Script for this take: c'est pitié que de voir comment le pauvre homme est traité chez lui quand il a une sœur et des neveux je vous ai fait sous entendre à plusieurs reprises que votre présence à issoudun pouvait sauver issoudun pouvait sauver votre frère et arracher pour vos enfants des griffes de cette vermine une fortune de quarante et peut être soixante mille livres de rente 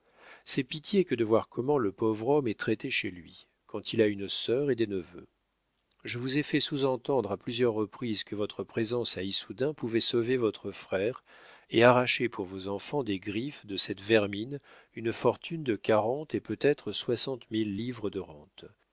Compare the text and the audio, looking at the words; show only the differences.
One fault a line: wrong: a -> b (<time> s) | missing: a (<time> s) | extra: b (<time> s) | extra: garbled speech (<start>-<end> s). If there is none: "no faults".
missing: issoudun pouvait sauver (10.4 s)